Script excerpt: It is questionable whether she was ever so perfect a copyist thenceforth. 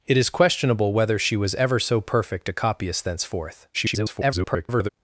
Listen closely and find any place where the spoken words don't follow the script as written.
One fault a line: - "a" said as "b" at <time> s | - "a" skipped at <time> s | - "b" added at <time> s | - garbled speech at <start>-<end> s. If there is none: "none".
- garbled speech at 3.7-4.9 s